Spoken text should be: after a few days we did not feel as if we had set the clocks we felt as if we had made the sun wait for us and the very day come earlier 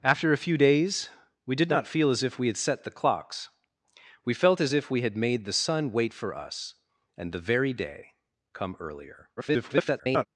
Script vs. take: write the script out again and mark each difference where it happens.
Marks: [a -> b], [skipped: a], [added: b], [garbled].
after a few days we did not feel as if we had set the clocks we felt as if we had made the sun wait for us and the very day come earlier [garbled]